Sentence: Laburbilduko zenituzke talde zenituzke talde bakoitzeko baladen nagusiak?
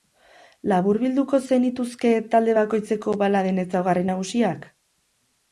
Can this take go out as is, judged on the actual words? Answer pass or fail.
fail